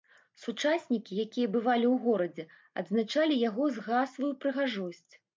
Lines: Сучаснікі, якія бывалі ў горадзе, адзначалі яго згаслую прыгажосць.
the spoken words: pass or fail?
pass